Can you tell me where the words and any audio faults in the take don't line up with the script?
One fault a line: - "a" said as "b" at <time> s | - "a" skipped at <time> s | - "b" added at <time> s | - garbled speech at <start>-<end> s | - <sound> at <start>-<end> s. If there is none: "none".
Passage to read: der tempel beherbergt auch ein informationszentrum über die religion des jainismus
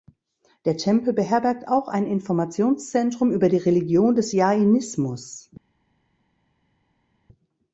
none